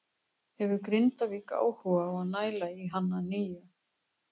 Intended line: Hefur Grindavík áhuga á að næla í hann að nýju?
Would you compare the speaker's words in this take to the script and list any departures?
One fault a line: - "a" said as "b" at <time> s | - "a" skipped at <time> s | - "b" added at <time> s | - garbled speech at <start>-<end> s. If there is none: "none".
none